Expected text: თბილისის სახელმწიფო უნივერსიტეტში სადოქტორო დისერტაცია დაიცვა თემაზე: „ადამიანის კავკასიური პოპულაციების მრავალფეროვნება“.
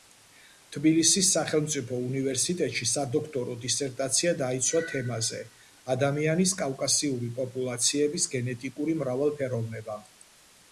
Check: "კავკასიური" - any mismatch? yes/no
no